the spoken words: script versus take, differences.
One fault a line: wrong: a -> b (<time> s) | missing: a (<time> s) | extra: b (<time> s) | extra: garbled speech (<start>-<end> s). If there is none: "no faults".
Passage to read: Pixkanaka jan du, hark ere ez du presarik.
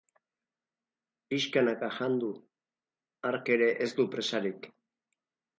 no faults